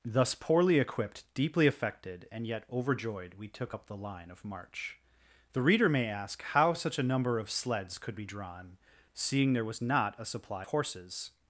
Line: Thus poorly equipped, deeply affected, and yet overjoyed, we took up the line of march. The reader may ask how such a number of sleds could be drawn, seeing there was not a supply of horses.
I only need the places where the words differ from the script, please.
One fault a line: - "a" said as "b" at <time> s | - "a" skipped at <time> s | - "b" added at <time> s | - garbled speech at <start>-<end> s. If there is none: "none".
- "of" skipped at 10.7 s